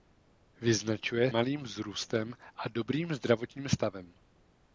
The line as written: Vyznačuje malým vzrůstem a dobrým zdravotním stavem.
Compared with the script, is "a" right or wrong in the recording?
right